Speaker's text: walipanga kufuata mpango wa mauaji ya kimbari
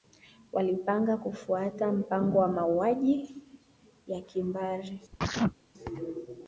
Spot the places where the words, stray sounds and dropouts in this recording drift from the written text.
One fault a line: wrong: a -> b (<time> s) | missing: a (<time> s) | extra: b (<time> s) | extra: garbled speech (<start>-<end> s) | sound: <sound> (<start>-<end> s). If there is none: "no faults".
sound: sneeze (5.1-5.6 s)